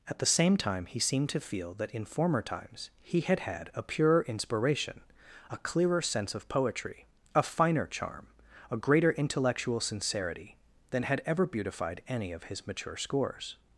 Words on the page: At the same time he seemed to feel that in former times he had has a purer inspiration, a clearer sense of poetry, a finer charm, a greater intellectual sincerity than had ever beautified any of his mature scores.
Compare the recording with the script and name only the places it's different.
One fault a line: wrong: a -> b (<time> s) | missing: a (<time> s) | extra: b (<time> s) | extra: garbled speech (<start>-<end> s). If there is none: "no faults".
wrong: has -> had (3.4 s)